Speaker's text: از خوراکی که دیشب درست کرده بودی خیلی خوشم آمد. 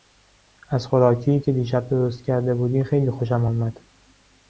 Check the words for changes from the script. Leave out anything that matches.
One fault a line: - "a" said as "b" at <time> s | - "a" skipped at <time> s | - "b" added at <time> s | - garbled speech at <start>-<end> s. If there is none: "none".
none